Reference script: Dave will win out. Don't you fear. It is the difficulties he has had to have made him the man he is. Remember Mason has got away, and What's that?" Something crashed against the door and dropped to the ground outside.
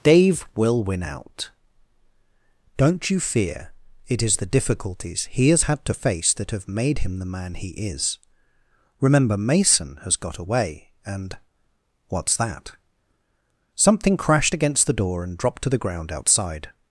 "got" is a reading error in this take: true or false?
false